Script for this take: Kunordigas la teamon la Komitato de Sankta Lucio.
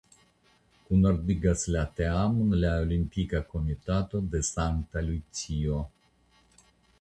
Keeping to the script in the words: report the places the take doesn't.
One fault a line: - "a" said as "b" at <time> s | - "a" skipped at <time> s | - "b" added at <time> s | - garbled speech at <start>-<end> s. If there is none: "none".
- "Olimpika" added at 2.9 s